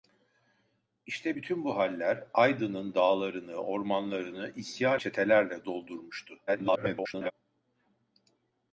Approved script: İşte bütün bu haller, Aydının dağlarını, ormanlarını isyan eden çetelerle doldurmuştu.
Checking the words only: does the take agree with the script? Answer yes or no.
no